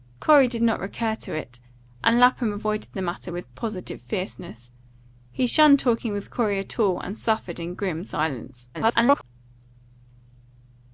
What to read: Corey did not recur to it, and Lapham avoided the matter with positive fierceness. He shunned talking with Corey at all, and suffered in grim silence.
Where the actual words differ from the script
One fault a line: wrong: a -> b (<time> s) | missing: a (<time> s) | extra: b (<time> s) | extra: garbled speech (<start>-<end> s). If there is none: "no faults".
extra: garbled speech (8.7-9.2 s)